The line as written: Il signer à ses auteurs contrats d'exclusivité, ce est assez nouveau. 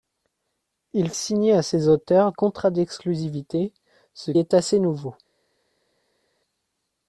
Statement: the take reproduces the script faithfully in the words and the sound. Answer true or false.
true